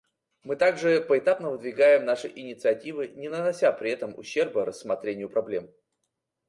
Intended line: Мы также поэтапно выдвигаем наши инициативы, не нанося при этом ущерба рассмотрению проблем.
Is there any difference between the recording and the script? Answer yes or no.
no